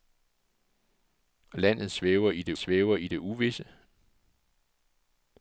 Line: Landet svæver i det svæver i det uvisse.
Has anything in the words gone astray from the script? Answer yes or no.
no